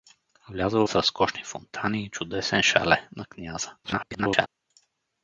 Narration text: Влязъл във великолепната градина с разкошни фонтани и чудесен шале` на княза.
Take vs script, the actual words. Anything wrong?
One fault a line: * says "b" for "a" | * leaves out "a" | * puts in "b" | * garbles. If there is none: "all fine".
* leaves out "във великолепната градина"
* garbles